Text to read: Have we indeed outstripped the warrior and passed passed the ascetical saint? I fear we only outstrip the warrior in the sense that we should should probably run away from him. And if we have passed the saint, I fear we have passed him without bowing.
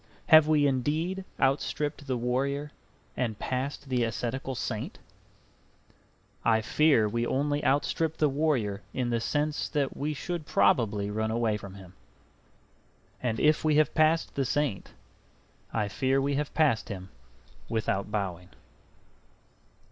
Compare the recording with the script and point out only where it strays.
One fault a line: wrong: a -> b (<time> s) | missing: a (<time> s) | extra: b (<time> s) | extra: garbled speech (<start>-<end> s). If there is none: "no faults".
missing: passed (3.9 s)
missing: should (10.5 s)